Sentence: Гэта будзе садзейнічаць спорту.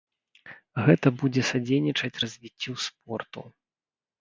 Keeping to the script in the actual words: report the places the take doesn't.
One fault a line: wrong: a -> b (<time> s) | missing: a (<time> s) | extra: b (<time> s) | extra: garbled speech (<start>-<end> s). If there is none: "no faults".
extra: развіццю (2.2 s)